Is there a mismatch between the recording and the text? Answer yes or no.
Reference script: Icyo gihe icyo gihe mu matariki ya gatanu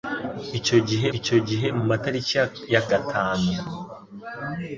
no